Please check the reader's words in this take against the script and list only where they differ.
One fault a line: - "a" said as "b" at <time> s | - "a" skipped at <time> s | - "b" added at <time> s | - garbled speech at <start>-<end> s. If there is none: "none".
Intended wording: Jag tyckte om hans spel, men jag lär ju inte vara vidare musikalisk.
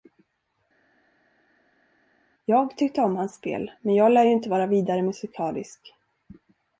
none